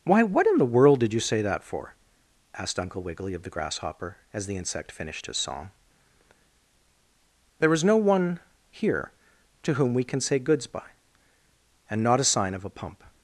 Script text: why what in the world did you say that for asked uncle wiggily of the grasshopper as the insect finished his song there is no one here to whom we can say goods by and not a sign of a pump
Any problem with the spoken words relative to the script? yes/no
no